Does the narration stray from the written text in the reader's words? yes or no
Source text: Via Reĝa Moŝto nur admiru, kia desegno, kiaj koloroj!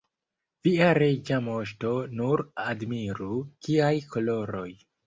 yes